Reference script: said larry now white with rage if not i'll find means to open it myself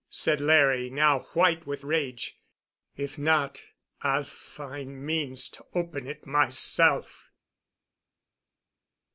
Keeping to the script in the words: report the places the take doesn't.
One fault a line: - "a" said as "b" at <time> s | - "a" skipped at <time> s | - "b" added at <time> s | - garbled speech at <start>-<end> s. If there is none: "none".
none